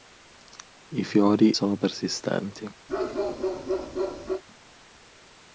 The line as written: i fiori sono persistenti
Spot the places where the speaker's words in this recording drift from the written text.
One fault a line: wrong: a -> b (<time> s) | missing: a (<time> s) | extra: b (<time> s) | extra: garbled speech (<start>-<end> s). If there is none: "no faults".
no faults